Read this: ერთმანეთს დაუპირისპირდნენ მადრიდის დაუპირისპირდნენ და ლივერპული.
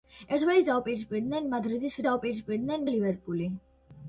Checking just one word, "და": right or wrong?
right